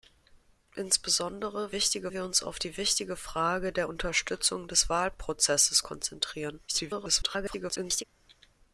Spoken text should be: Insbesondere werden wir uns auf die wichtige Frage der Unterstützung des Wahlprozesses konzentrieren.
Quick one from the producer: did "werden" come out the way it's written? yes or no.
no